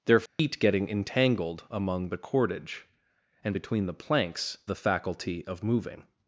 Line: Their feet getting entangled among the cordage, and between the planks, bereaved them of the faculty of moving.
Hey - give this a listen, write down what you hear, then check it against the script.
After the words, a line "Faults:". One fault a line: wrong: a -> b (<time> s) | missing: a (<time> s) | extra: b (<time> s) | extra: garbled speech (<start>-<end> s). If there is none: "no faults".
Their feet getting entangled among the cordage, and between the planks, the faculty of moving.
Faults:
missing: bereaved them of (4.6 s)